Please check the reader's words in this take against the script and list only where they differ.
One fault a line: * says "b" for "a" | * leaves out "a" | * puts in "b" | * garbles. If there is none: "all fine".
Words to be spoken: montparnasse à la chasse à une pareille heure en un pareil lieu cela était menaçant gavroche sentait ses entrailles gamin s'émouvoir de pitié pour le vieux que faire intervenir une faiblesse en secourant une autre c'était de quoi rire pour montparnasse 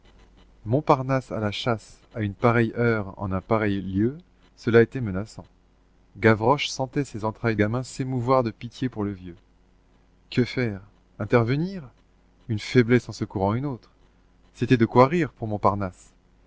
all fine